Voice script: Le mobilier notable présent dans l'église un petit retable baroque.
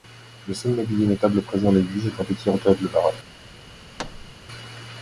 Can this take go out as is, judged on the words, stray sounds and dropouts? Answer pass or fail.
fail